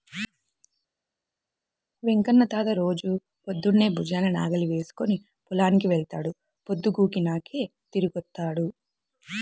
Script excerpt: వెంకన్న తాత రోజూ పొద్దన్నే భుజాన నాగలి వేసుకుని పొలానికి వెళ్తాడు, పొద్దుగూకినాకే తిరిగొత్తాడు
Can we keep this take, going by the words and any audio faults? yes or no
yes